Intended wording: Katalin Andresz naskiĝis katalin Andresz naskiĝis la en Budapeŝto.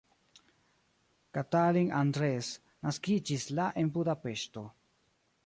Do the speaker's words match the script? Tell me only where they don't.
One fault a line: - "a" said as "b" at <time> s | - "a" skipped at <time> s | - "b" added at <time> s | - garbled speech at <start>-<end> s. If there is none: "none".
- "katalin Andresz naskiĝis" skipped at 3.5 s